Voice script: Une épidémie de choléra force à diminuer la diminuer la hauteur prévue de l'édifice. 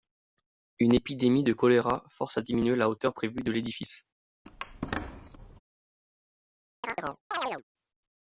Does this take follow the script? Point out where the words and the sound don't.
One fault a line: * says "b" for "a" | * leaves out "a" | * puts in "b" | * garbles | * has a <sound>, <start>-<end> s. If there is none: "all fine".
* leaves out "diminuer la"
* has a squeak, 4.5-5.6 s
* has a chirp, 6.8-7.6 s